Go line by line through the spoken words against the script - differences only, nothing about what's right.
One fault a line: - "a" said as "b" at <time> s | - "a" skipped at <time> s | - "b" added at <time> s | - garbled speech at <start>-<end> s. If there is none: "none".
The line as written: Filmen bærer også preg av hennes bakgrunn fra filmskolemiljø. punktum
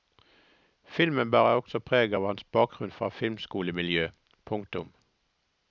- "hennes" said as "hans" at 2.3 s